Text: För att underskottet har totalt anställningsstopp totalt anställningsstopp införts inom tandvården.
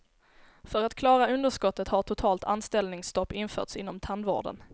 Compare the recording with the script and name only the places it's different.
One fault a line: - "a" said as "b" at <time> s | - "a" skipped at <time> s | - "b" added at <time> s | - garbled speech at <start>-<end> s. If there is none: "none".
- "klara" added at 0.9 s
- "totalt anställningsstopp" skipped at 3.3 s